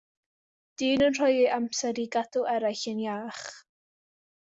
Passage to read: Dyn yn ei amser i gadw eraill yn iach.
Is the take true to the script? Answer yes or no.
no